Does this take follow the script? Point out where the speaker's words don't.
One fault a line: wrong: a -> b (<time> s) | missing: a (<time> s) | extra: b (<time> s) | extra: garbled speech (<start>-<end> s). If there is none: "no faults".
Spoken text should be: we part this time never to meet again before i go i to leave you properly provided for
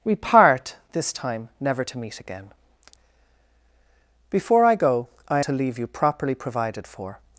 no faults